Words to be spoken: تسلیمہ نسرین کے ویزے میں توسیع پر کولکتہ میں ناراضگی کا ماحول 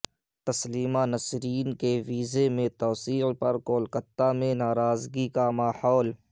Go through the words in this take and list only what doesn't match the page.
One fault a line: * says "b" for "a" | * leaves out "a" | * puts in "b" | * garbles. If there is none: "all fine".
all fine